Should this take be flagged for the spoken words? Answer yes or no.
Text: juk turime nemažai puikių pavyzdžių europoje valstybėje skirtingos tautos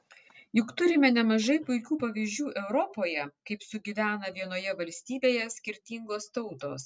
yes